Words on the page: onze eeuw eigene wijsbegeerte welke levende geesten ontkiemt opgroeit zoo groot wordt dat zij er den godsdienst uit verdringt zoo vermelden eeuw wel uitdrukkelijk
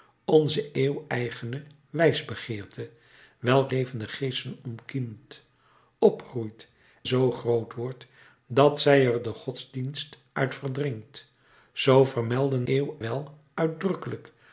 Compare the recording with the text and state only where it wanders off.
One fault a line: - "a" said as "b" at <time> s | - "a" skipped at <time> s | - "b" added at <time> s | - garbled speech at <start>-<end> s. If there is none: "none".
none